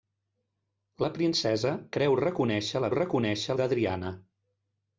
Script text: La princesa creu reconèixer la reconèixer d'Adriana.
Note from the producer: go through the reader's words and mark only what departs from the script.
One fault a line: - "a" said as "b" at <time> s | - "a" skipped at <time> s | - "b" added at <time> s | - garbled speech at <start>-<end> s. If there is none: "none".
none